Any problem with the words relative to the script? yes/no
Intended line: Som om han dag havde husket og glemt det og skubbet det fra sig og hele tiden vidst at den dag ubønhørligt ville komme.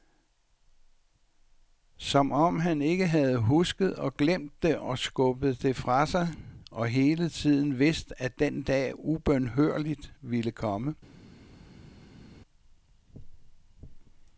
yes